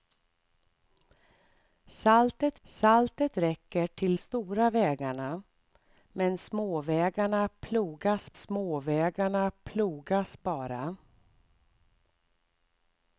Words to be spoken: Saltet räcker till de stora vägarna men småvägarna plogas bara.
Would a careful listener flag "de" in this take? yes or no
yes